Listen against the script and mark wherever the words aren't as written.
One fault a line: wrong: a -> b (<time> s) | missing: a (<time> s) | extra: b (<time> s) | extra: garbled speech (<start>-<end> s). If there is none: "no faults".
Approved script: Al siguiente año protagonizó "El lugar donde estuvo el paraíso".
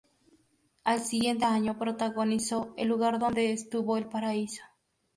no faults